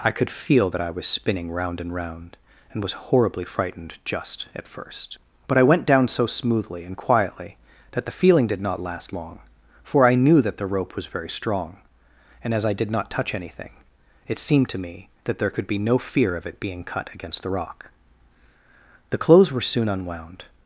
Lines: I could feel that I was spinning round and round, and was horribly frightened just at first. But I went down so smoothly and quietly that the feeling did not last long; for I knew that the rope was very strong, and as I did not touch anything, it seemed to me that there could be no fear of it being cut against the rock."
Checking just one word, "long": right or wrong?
right